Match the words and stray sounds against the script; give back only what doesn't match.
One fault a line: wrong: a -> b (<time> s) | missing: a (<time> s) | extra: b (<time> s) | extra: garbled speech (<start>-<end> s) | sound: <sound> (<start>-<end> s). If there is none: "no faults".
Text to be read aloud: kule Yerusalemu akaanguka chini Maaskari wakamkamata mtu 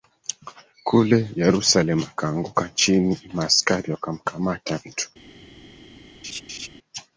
sound: laugh (6.2-6.7 s)